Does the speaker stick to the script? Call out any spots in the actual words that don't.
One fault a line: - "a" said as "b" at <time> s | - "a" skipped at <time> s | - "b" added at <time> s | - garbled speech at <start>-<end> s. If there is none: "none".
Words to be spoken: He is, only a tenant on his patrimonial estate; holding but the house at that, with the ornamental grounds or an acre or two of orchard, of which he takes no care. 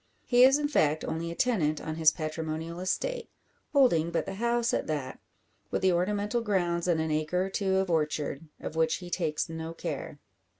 - "in fact" added at 0.6 s
- "or" said as "and" at 6.9 s